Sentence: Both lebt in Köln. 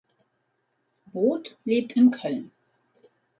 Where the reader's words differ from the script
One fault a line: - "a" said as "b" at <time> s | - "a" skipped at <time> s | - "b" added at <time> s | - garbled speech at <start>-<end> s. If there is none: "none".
none